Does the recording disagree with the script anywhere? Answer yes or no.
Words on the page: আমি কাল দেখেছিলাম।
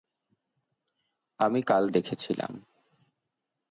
no